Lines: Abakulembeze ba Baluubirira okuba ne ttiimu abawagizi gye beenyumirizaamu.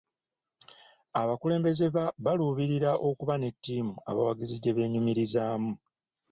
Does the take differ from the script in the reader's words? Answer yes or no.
no